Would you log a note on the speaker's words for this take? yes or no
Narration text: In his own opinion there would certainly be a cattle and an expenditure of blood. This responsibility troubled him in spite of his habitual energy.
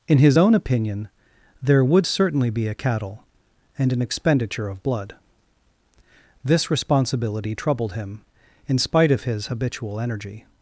no